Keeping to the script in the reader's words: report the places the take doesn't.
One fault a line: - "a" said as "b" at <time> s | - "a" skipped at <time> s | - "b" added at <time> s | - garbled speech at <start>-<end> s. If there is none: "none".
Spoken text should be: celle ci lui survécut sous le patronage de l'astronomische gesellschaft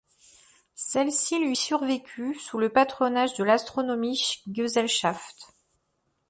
none